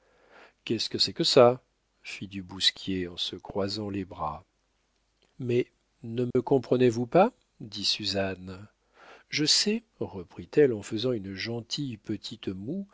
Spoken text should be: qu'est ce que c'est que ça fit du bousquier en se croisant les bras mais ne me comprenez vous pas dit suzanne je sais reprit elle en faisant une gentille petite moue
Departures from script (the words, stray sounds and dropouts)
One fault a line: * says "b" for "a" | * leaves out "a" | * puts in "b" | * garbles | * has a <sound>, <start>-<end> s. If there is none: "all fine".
* has a dropout, 6.3-6.4 s